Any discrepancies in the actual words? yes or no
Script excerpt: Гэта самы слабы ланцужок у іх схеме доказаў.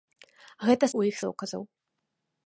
yes